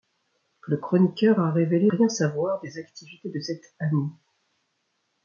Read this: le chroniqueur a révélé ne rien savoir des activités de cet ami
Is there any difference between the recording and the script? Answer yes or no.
yes